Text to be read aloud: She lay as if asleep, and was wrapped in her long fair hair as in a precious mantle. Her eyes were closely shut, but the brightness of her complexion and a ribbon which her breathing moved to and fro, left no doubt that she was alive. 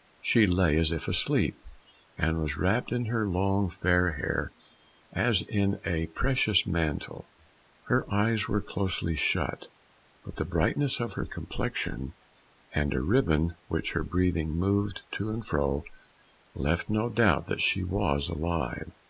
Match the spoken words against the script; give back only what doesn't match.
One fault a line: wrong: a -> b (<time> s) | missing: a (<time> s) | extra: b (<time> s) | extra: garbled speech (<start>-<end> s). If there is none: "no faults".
no faults